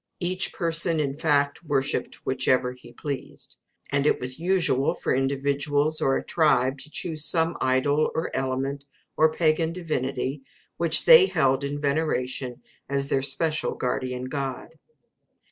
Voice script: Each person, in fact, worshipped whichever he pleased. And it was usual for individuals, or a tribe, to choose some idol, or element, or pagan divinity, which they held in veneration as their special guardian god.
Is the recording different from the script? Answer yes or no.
no